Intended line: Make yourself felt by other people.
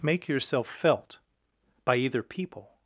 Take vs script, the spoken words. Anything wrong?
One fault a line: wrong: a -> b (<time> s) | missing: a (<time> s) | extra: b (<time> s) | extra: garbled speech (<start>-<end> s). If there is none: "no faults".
wrong: other -> either (2.0 s)